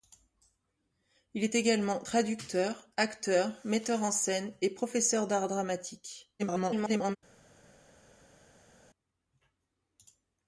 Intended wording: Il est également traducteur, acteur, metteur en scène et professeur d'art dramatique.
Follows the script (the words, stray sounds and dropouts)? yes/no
no